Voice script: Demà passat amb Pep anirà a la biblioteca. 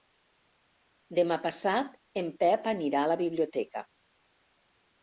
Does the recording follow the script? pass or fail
fail